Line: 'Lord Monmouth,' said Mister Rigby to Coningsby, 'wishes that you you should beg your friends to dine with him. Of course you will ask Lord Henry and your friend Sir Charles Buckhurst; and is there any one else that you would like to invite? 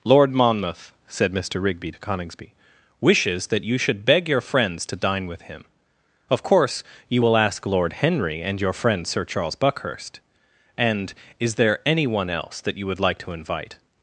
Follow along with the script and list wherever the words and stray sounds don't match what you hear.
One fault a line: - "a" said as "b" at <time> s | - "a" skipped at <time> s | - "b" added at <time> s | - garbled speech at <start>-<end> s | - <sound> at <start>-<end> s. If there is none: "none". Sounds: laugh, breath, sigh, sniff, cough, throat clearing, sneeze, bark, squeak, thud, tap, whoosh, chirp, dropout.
- "you" skipped at 3.8 s